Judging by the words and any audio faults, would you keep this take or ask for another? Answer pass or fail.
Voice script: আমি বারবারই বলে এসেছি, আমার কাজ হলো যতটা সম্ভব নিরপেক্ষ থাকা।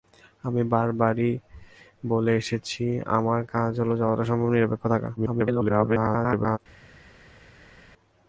fail